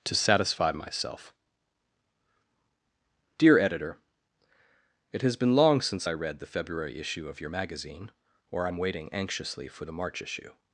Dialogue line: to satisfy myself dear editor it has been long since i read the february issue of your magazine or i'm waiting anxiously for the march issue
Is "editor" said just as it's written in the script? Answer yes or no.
yes